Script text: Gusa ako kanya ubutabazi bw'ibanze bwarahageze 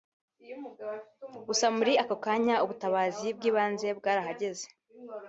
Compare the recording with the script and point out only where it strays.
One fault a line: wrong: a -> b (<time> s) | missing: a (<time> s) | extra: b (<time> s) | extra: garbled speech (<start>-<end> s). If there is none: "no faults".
extra: muri (1.8 s)